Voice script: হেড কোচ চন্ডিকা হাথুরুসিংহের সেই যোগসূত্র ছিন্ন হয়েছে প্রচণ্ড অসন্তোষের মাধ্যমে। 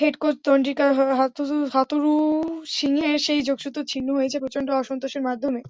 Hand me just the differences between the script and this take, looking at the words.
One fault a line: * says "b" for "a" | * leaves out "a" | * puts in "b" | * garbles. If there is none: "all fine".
all fine